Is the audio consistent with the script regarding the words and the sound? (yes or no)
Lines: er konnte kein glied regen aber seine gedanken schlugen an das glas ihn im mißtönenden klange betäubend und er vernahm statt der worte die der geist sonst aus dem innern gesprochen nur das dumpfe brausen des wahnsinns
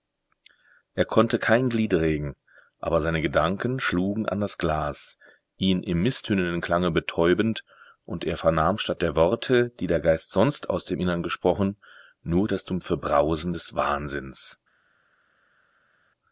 yes